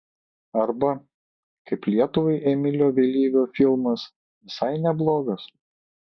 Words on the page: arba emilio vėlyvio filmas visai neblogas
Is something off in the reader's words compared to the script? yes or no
yes